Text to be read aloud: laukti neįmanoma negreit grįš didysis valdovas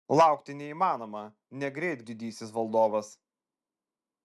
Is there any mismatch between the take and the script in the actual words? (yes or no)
yes